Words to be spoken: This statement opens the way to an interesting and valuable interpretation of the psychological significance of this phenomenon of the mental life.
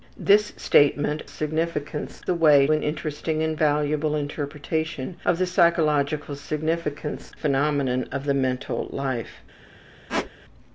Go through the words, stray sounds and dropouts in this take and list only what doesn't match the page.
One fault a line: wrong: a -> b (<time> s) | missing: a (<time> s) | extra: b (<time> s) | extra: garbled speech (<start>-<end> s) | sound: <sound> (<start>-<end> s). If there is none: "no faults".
wrong: opens -> significance (1.2 s)
missing: to (2.7 s)
missing: of this (7.3 s)
sound: squeak (10.1-10.3 s)